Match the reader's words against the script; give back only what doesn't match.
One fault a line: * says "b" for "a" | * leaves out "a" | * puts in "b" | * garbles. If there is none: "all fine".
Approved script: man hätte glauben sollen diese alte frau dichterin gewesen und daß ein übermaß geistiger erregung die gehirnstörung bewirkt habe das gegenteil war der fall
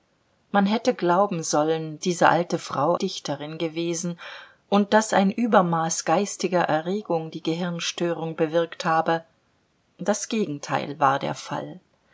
all fine